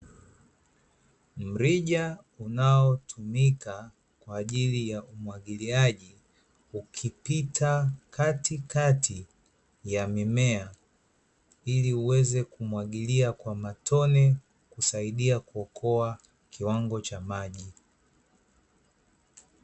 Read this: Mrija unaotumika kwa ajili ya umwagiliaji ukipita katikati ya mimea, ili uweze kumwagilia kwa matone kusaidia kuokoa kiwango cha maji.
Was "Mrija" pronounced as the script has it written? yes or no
yes